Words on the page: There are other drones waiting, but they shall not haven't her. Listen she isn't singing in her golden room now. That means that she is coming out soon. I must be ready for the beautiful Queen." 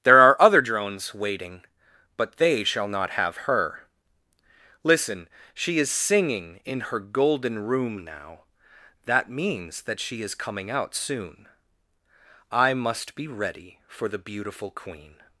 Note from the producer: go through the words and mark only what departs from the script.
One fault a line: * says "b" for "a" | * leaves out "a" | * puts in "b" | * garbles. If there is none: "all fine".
* says "have" for "haven't"
* says "is" for "isn't"